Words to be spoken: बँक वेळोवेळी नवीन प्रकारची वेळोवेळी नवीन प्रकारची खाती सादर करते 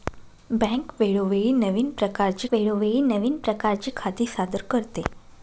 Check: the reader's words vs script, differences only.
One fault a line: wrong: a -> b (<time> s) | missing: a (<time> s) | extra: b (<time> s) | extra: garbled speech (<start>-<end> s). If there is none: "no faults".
no faults